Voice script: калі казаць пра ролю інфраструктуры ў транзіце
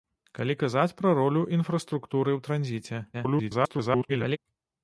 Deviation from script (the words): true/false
true